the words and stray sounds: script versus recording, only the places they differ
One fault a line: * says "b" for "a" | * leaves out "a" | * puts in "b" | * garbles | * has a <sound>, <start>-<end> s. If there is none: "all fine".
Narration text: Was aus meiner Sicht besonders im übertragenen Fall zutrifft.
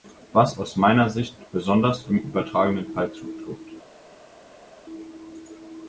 all fine